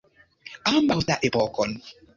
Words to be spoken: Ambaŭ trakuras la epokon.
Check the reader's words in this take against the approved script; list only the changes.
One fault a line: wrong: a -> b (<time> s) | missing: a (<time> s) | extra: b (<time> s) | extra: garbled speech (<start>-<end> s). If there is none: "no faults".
missing: trakuras (1.0 s)